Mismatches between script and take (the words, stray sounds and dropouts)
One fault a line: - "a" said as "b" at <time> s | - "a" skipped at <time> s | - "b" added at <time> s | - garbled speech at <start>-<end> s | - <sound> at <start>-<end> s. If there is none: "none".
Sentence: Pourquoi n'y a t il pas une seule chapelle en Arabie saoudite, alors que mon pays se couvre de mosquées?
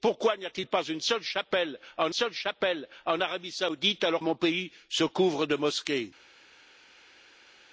- "seule chapelle en" added at 2.1 s
- "que" skipped at 4.2 s